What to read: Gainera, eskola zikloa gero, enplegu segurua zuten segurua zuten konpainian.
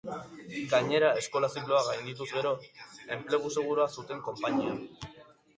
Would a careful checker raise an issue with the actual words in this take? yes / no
yes